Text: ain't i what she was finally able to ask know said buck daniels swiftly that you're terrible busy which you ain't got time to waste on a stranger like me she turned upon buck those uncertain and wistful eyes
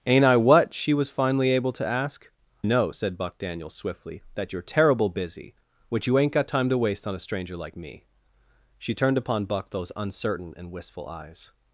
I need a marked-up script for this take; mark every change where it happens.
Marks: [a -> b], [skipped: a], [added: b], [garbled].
ain't i what she was finally able to ask know said buck daniels swiftly that you're terrible busy which you ain't got time to waste on a stranger like me she turned upon buck those uncertain and wistful eyes